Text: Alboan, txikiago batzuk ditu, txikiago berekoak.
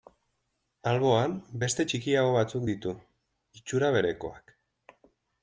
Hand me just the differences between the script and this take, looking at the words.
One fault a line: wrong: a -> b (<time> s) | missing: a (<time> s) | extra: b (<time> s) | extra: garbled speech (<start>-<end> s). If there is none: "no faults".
extra: beste (1.6 s)
wrong: txikiago -> itxura (3.6 s)